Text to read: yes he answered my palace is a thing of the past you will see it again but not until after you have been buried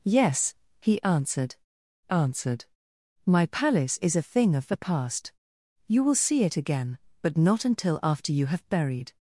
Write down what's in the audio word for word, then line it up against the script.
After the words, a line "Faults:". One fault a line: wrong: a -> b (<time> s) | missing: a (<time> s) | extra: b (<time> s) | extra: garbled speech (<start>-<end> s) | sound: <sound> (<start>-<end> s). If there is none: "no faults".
yes he answered answered my palace is a thing of the past you will see it again but not until after you have buried
Faults:
extra: answered (2.1 s)
missing: been (8.7 s)